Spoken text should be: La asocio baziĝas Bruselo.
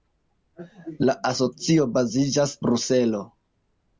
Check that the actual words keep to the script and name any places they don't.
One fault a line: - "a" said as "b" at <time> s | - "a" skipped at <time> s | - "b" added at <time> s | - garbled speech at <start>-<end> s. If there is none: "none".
none